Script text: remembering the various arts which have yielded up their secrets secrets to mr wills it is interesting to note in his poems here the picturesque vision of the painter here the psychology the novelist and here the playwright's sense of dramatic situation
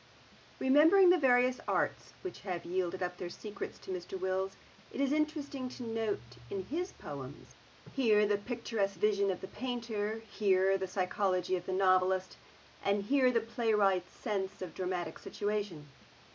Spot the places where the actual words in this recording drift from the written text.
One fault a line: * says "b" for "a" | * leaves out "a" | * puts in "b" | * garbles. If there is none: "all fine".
* leaves out "secrets"
* puts in "of"